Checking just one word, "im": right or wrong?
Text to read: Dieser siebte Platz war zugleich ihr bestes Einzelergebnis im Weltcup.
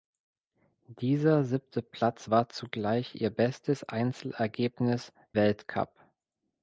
wrong